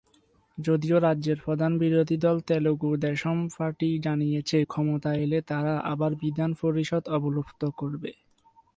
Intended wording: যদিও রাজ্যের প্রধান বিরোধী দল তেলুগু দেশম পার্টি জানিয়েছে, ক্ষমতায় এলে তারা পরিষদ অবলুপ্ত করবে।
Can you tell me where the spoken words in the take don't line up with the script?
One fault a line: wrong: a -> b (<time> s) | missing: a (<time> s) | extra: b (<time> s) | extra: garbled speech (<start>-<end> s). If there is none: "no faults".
extra: আবার বিধান (5.9 s)